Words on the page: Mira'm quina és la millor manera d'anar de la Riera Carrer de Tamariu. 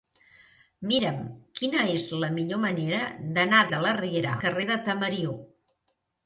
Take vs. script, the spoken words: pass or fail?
pass